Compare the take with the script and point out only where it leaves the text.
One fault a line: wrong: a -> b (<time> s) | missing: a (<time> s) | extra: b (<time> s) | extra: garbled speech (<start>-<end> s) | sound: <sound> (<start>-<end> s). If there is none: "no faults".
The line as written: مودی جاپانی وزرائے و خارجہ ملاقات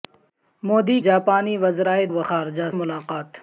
no faults